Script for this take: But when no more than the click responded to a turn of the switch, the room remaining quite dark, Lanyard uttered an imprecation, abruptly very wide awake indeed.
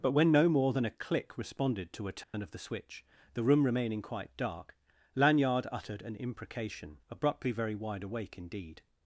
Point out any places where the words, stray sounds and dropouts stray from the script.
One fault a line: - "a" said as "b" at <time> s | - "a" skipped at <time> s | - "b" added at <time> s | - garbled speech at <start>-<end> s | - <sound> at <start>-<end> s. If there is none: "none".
- "the" said as "a" at 0.8 s
- dropout at 2.2-2.3 s